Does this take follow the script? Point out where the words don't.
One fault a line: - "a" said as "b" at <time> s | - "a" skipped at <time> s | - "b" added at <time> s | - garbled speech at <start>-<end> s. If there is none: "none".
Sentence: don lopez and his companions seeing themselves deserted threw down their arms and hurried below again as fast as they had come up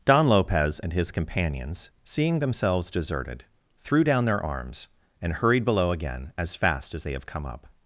- "had" said as "have" at 7.1 s